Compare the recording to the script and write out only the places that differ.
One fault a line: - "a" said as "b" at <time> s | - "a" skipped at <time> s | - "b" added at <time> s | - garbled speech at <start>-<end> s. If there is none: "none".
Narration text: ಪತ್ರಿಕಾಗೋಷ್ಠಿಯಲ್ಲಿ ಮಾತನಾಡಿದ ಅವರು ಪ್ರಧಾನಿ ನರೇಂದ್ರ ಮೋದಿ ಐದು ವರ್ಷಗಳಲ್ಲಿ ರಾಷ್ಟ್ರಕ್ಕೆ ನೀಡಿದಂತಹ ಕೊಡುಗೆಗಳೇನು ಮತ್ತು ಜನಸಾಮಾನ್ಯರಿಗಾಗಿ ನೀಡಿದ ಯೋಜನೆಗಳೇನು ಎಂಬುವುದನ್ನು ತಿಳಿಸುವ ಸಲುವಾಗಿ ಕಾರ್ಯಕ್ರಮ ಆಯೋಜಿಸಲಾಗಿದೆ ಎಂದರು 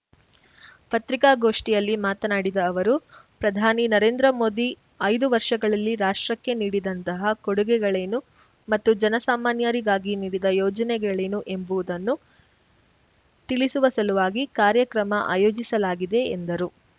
none